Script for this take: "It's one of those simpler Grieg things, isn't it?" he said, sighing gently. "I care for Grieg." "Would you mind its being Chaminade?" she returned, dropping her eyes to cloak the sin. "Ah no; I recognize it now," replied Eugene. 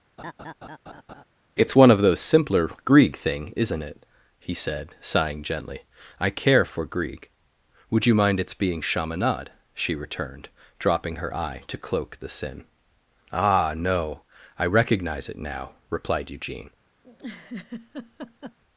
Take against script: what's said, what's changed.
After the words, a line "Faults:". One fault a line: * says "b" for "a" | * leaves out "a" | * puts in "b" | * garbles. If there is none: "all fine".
"It's one of those simpler Grieg thing, isn't it?" he said, sighing gently. "I care for Grieg." "Would you mind its being Chaminade?" she returned, dropping her eye to cloak the sin. "Ah no; I recognize it now," replied Eugene.
Faults:
* says "thing" for "things"
* says "eye" for "eyes"